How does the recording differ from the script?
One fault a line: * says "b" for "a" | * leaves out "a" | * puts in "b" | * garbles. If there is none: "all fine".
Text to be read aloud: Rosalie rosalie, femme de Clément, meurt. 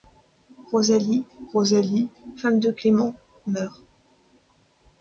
all fine